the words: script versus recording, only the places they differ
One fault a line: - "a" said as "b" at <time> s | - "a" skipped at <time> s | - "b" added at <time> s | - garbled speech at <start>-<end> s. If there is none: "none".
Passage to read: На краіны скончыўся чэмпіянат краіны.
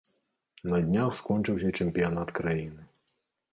- "краіны" said as "днях" at 0.9 s